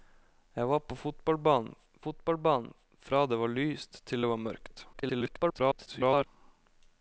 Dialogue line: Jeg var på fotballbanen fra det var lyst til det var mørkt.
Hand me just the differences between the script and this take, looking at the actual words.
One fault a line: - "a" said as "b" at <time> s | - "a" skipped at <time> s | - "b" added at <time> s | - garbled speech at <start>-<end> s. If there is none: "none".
- "fotballbanen" added at 2.0 s
- garbled speech at 4.9-6.3 s